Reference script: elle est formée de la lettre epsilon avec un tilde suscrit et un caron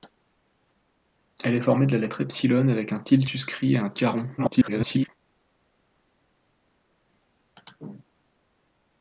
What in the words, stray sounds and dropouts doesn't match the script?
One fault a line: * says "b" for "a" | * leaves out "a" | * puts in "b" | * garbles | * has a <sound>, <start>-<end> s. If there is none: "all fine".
* garbles